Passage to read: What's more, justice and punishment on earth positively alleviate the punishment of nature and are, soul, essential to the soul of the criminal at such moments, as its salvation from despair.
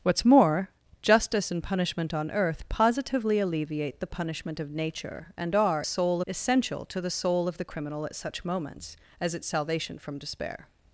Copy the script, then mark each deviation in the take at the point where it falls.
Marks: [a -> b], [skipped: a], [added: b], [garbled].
What's more, justice and punishment on earth positively alleviate the punishment of nature and are, soul, essential to the soul of the criminal at such moments, as its salvation from despair.